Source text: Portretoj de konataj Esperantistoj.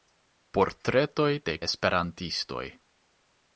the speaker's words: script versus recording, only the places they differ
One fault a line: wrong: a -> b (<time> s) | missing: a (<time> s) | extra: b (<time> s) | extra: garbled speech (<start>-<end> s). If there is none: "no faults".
missing: konataj (1.6 s)